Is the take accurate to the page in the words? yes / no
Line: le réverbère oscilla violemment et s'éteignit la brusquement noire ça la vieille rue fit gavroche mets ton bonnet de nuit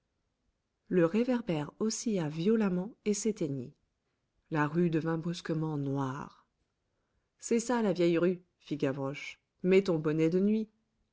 no